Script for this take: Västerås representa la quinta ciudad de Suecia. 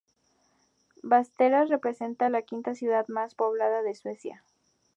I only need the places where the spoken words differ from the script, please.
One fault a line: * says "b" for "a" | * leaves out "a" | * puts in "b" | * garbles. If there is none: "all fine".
* puts in "más poblada"